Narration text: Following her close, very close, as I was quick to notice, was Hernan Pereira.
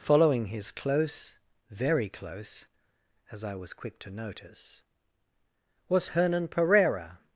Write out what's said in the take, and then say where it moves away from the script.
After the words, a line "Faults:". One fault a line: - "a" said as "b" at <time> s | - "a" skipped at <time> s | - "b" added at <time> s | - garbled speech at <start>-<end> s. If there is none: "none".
Following his close, very close, as I was quick to notice, was Hernan Pereira.
Faults:
- "her" said as "his" at 0.5 s